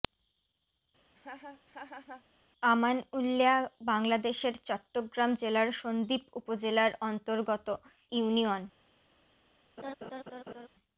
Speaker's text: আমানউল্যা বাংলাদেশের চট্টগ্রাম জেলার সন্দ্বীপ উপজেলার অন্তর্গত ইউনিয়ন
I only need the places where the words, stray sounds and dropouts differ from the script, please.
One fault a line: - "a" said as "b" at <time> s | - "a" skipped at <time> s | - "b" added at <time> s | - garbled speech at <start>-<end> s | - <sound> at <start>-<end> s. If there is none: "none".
- laugh at 1.1-2.2 s
- laugh at 9.8-10.7 s